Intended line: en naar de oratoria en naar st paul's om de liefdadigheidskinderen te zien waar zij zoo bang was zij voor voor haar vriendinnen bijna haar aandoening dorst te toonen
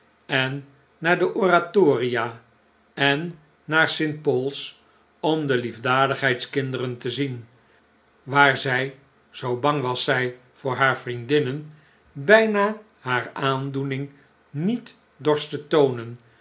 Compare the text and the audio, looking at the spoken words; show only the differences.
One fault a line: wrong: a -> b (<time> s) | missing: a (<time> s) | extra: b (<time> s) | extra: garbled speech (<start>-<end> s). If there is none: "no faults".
missing: voor (10.8 s)
extra: niet (14.5 s)